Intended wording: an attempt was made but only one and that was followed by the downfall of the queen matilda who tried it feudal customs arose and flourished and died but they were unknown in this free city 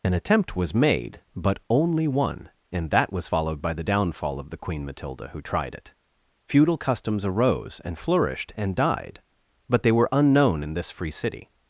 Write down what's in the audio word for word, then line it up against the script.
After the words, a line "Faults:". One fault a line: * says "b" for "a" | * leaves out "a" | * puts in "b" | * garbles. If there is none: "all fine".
an attempt was made but only one and that was followed by the downfall of the queen matilda who tried it feudal customs arose and flourished and died but they were unknown in this free city
Faults:
all fine